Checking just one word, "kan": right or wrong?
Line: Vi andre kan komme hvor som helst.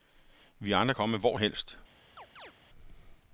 wrong